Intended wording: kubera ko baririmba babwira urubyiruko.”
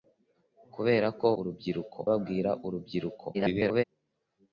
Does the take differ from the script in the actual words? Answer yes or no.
yes